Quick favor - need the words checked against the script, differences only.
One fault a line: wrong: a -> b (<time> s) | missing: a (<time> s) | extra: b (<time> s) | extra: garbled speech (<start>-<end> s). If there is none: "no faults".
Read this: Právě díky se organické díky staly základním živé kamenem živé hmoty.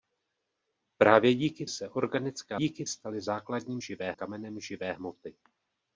no faults